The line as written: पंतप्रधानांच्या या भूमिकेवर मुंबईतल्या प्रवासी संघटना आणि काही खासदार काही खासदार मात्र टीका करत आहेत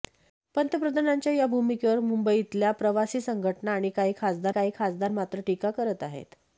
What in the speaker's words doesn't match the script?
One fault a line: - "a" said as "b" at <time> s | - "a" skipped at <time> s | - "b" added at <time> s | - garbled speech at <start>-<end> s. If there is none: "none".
none